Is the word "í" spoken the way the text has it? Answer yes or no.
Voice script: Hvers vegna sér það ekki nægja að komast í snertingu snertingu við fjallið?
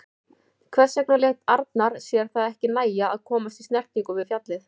yes